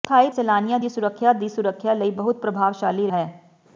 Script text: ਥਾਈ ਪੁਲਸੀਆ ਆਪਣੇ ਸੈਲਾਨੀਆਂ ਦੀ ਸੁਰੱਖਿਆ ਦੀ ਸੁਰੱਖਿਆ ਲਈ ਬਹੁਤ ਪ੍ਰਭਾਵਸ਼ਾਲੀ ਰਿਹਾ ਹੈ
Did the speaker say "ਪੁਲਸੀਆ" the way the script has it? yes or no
no